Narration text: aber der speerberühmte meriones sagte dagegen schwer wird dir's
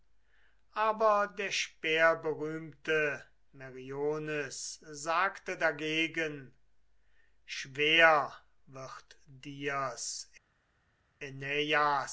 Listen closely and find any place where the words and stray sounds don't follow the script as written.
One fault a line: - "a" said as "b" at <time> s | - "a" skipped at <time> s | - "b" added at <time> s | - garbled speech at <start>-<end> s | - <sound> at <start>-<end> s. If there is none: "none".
none